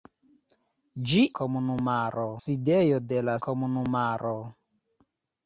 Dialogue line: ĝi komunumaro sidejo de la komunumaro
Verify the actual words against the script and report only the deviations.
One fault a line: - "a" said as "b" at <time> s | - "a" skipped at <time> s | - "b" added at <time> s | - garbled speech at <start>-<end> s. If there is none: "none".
none